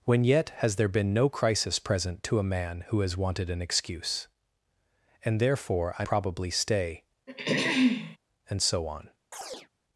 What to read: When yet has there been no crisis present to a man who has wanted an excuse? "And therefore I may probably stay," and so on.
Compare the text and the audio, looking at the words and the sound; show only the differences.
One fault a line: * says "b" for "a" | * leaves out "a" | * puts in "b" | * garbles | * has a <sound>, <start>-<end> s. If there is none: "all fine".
* leaves out "may"
* has a throat clearing, 7.3-8.2 s
* has a chirp, 9.3-9.7 s